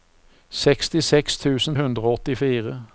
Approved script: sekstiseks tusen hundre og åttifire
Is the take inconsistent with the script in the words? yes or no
no